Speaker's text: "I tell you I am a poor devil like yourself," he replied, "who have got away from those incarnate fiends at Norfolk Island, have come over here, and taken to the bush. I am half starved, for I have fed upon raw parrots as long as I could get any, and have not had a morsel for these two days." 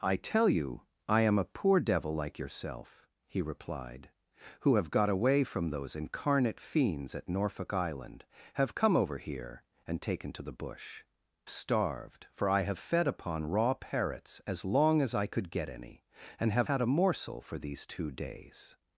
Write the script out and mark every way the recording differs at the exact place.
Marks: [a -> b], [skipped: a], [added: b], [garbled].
"I tell you I am a poor devil like yourself," he replied, "who have got away from those incarnate fiends at Norfolk Island, have come over here, and taken to the bush. [skipped: I am half] starved, for I have fed upon raw parrots as long as I could get any, and have [skipped: not] had a morsel for these two days."